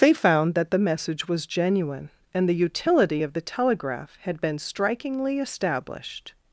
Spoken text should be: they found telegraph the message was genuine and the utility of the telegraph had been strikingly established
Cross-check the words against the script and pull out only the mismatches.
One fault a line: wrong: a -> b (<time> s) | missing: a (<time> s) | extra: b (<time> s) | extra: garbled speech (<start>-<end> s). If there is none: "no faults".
wrong: telegraph -> that (0.6 s)